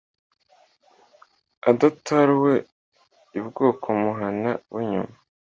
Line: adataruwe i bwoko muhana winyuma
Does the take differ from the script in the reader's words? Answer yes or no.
no